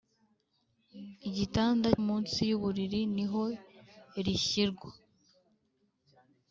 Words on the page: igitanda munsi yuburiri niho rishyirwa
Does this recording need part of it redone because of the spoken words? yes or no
no